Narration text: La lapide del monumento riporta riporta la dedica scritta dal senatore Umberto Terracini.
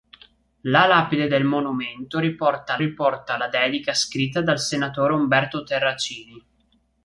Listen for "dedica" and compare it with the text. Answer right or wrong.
right